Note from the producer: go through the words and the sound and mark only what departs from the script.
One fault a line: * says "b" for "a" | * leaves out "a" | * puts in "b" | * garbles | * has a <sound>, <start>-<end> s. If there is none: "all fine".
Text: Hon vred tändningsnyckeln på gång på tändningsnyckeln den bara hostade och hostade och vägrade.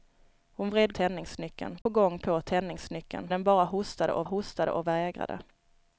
* has a dropout, 1.8-1.9 s